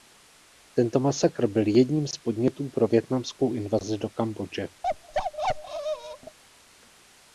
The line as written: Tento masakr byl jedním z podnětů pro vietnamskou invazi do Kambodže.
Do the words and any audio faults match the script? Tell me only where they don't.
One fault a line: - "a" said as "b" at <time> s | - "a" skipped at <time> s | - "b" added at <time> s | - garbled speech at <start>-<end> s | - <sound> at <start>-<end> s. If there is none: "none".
- bark at 4.8-6.4 s